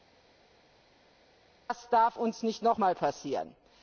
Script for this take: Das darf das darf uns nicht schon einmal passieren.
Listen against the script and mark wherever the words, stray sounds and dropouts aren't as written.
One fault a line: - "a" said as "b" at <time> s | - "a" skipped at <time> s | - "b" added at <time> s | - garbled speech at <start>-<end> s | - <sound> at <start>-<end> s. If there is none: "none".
- "das darf" skipped at 2.2 s
- "schon" said as "noch" at 2.6 s